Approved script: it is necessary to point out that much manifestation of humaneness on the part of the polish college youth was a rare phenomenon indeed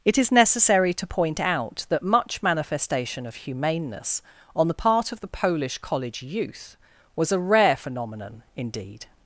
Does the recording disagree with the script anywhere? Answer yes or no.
no